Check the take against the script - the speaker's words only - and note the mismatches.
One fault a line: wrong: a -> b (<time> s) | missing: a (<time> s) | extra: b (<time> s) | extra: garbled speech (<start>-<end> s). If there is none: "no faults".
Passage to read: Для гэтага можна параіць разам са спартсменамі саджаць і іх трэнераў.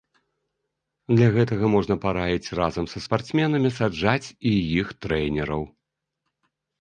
no faults